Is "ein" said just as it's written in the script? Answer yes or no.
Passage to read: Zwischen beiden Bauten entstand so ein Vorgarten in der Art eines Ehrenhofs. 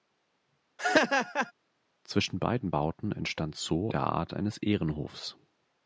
no